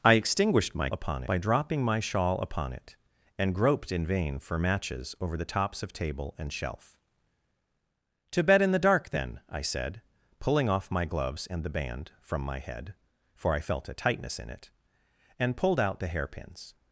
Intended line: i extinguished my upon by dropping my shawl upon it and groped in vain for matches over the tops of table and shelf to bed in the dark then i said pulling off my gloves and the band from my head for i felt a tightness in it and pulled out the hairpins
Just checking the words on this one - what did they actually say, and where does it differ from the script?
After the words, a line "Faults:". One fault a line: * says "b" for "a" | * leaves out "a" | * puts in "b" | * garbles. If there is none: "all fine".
i extinguished my upon by dropping my shawl upon it and groped in vain for matches over the tops of table and shelf to bed in the dark then i said pulling off my gloves and the band from my head for i felt a tightness in it and pulled out the hairpins
Faults:
all fine